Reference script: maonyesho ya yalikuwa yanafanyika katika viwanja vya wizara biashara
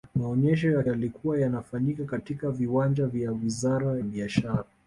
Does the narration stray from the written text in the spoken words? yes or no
no